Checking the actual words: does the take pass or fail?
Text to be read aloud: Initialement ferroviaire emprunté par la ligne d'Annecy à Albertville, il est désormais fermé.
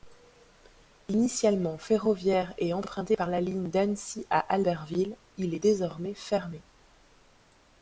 fail